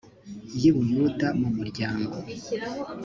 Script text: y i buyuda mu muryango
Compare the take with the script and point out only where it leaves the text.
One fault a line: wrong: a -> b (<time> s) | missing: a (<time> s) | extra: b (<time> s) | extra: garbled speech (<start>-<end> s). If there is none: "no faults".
no faults